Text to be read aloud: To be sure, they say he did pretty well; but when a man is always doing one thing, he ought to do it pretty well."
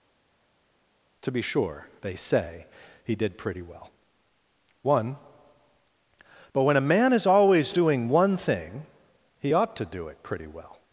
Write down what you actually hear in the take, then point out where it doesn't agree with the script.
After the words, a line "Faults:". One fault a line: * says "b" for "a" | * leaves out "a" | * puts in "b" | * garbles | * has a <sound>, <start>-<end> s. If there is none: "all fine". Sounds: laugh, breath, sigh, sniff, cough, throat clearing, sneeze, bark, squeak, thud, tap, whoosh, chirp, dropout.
To be sure, they say he did pretty well; one but when a man is always doing one thing, he ought to do it pretty well."
Faults:
* puts in "one"